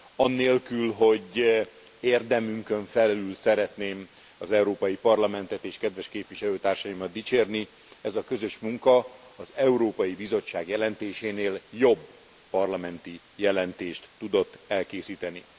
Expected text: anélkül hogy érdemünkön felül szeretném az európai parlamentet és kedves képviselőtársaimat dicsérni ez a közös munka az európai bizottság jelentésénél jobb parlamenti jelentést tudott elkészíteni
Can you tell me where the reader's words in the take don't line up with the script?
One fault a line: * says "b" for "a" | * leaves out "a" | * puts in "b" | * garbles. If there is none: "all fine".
all fine